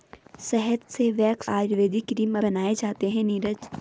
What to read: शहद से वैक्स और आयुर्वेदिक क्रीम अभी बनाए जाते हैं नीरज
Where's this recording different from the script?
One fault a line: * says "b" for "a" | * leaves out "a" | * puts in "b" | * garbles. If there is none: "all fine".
* leaves out "और"
* leaves out "अभी"